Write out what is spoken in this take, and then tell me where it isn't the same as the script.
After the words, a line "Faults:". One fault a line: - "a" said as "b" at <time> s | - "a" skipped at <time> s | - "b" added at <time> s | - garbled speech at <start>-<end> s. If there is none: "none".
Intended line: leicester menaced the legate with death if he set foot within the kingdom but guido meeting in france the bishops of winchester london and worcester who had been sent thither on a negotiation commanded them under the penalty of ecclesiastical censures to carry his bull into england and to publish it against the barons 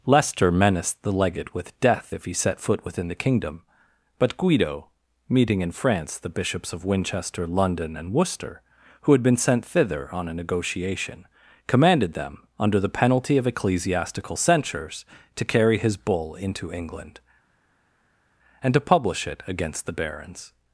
leicester menaced the legate with death if he set foot within the kingdom but guido meeting in france the bishops of winchester london and worcester who had been sent thither on a negotiation commanded them under the penalty of ecclesiastical censures to carry his bull into england and to publish it against the barons
Faults:
none